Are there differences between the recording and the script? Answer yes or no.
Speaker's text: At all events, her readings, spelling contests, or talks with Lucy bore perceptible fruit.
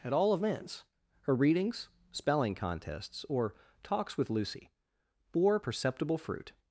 no